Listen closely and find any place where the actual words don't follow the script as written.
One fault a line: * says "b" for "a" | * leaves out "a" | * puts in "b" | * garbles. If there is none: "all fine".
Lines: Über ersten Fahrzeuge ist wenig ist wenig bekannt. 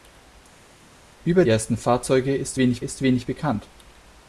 all fine